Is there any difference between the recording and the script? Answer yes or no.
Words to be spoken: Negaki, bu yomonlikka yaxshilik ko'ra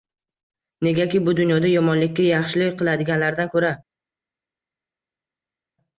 yes